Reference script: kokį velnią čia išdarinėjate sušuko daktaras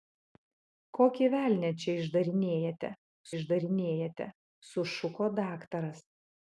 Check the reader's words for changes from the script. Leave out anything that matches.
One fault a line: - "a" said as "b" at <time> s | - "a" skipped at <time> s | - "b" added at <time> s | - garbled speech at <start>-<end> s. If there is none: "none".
- "išdarinėjate" added at 3.4 s